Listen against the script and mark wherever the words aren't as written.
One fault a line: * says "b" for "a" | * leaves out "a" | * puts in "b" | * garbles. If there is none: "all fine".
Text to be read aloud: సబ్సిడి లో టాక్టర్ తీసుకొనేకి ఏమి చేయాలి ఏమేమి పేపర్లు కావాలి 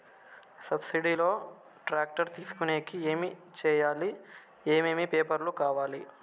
all fine